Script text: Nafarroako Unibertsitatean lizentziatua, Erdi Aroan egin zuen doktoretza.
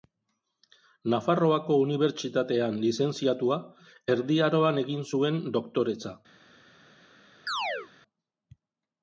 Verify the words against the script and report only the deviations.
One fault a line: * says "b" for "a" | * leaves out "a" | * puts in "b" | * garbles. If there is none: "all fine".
all fine